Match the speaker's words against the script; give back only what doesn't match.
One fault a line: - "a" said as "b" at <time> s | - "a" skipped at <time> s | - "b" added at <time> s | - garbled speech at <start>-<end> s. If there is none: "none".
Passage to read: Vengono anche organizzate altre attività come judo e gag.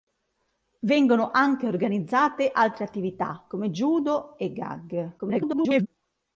- garbled speech at 5.2-5.9 s